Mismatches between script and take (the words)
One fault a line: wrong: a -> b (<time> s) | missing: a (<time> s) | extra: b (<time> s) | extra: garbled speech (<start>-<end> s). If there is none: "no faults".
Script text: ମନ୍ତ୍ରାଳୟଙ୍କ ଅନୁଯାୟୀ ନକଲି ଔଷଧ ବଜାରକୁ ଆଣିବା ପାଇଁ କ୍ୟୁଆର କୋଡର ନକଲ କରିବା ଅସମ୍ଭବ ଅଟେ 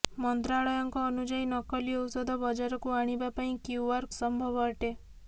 missing: କୋଡର ନକଲ କରିବା (4.1 s)